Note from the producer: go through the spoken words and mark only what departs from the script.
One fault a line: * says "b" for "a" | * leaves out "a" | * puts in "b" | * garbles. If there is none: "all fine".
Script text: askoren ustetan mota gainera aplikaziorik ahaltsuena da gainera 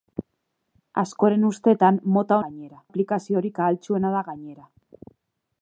all fine